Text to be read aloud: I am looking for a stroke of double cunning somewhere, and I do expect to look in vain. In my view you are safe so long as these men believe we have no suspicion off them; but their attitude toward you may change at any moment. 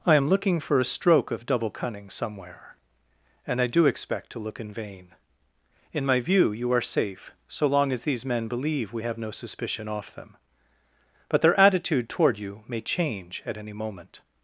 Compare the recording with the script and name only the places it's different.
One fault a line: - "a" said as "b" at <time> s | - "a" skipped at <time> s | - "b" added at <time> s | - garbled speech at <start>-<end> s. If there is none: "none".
none